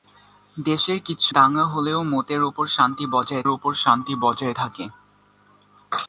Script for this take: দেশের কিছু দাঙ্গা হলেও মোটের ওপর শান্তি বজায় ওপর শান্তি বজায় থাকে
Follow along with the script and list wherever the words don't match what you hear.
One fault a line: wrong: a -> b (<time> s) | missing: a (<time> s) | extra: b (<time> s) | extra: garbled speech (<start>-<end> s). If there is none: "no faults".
no faults